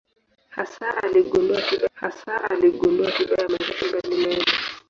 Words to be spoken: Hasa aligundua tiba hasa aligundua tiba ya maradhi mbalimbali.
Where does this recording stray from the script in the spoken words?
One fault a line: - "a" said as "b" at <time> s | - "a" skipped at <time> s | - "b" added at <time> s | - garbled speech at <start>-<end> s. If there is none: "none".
none